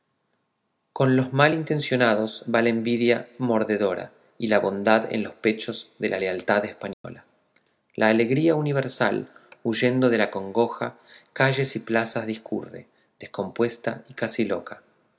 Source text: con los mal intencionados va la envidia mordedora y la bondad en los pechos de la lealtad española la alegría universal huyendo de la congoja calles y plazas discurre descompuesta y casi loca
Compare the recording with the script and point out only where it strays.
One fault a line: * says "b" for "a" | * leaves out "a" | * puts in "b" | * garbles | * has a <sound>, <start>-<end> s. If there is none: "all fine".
* has a dropout, 6.9-7.0 s